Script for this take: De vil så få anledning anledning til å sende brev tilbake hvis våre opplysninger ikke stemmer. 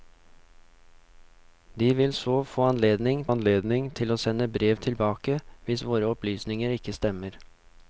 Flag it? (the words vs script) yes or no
no